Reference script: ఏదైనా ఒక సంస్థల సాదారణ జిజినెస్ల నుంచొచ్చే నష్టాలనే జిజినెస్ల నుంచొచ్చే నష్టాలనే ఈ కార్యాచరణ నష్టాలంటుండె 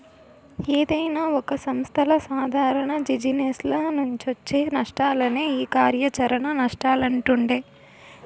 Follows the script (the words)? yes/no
no